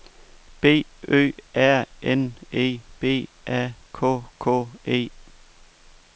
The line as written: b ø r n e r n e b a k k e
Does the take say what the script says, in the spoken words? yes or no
no